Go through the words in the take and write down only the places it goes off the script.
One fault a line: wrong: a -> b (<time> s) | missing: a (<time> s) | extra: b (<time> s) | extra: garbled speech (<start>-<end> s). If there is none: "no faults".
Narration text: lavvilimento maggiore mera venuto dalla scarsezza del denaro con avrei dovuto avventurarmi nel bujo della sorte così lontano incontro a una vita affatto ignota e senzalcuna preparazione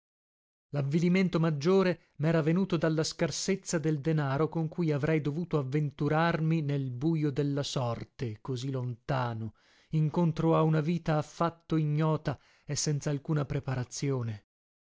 extra: cui (4.7 s)